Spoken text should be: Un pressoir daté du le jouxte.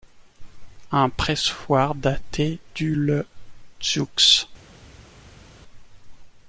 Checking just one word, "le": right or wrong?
right